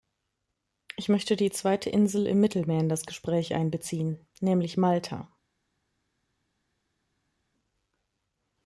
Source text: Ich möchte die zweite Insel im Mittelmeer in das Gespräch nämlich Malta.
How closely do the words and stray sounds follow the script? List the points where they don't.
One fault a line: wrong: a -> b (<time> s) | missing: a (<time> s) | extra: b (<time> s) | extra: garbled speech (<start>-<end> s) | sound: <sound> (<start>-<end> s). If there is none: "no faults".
extra: einbeziehen (3.5 s)